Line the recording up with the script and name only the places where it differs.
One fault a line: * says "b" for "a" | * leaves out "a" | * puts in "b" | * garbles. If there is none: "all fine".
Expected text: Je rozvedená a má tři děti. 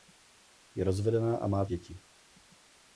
* leaves out "tři"